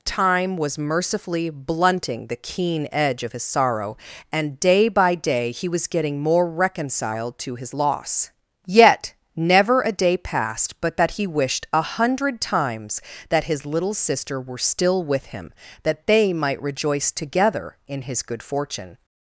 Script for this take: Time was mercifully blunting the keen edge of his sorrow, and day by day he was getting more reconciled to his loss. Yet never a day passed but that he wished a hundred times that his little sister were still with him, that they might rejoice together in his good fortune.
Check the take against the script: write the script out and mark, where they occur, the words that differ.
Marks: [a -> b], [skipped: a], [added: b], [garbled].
Time was mercifully blunting the keen edge of his sorrow, and day by day he was getting more reconciled to his loss. Yet never a day passed but that he wished a hundred times that his little sister were still with him, that they might rejoice together in his good fortune.